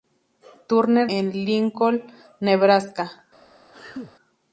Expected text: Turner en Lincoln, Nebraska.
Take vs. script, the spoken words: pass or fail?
pass